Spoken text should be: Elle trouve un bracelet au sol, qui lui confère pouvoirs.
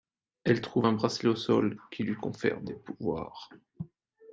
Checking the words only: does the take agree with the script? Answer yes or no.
no